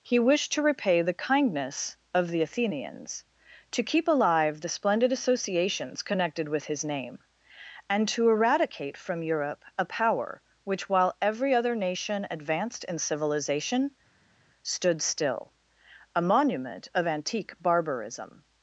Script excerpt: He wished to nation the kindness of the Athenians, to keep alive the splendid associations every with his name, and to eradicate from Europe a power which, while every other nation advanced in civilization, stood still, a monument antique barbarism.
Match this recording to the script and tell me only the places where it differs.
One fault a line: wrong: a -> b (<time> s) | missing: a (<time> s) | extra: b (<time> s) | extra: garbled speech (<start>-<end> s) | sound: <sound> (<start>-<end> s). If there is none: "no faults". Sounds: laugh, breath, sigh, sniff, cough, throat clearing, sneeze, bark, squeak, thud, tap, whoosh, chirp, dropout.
wrong: nation -> repay (0.6 s)
wrong: every -> connected (6.0 s)
extra: of (16.9 s)